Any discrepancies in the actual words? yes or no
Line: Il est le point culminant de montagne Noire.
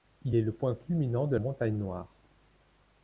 no